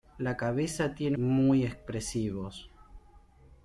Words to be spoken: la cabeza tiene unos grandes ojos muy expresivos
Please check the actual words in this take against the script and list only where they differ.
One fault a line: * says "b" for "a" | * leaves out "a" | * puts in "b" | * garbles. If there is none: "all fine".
* leaves out "unos grandes ojos"